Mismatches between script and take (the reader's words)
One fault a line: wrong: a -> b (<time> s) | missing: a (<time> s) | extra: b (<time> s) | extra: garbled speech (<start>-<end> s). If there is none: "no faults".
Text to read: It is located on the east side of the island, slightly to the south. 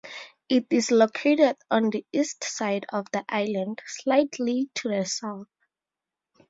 no faults